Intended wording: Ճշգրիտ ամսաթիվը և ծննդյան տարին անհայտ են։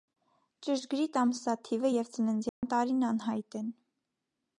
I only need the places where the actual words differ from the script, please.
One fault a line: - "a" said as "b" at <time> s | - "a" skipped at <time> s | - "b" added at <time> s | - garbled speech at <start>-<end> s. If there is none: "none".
none